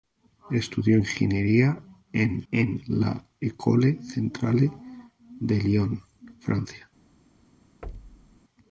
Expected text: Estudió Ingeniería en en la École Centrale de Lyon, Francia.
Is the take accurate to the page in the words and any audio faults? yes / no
no